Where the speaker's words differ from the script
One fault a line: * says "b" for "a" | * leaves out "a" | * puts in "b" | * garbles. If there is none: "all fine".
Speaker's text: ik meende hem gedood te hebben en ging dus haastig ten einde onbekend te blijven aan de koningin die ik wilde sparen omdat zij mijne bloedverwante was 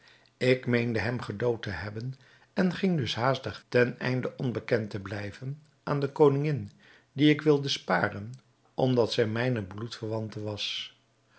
all fine